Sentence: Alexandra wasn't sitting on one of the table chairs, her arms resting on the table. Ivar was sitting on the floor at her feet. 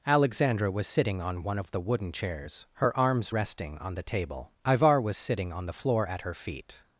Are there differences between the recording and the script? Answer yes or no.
yes